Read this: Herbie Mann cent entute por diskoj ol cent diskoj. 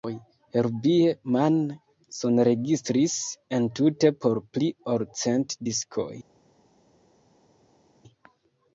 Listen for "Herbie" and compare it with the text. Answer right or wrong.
right